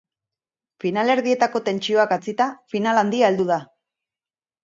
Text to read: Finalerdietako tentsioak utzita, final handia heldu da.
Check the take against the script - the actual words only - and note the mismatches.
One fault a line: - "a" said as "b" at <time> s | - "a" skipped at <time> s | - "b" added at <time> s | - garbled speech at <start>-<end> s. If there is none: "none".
none